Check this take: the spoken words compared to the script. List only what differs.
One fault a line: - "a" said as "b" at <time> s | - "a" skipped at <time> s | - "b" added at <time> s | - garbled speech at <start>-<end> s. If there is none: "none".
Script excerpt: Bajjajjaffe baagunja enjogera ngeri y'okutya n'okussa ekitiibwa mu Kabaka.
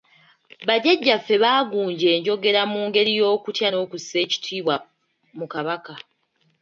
- "mu" added at 2.7 s